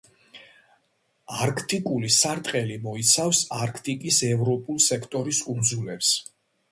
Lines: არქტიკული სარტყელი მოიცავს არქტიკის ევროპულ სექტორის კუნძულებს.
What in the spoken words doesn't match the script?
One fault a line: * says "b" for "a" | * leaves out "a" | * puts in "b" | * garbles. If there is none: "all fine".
all fine